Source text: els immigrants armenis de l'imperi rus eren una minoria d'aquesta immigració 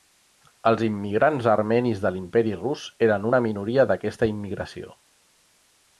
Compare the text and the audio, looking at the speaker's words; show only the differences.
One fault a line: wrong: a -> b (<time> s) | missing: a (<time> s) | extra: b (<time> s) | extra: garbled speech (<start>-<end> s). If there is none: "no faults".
no faults